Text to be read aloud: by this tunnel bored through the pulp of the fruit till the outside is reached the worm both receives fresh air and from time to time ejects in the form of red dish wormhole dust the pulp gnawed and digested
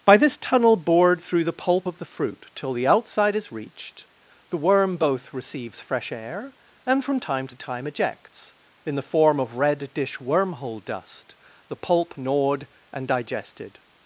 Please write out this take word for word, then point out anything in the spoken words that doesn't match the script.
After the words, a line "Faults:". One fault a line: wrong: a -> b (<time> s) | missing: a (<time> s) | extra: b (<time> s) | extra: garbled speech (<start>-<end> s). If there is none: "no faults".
by this tunnel bored through the pulp of the fruit till the outside is reached the worm both receives fresh air and from time to time ejects in the form of red dish wormhole dust the pulp gnawed and digested
Faults:
no faults